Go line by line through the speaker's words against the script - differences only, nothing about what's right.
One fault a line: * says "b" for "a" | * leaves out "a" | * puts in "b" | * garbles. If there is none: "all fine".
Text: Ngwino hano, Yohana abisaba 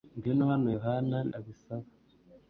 all fine